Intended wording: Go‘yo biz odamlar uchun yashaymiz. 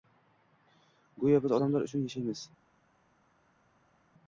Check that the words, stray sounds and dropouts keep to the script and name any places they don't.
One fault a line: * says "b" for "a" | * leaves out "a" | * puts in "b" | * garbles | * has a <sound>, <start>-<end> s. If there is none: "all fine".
all fine